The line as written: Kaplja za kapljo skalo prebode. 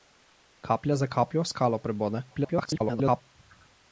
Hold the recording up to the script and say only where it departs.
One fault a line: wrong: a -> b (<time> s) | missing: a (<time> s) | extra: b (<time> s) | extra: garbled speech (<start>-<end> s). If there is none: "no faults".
extra: garbled speech (2.3-3.2 s)